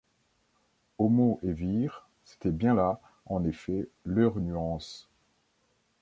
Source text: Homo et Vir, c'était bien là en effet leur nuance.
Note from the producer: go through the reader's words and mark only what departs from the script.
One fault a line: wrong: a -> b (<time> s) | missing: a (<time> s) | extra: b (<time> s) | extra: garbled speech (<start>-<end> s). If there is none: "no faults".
no faults